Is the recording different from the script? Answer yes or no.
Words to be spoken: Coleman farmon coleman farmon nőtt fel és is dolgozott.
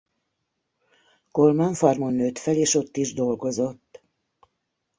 yes